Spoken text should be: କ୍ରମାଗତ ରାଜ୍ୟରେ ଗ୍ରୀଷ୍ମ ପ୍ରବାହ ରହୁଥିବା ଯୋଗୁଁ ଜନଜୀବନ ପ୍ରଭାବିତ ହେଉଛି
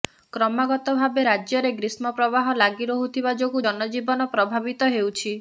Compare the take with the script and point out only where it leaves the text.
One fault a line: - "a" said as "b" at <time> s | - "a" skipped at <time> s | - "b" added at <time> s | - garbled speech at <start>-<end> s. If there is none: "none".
- "ଭାବେ" added at 0.9 s
- "ଲାଗି" added at 2.6 s